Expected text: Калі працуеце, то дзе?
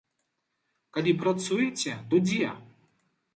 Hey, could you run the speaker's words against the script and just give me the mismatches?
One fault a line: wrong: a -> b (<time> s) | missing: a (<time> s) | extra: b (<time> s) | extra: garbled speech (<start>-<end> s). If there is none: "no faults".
no faults